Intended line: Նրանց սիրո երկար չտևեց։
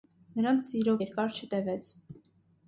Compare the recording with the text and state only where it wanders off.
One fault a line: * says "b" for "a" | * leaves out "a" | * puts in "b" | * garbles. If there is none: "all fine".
all fine